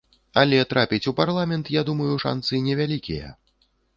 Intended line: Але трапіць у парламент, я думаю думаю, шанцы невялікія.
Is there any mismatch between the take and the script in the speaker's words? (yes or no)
yes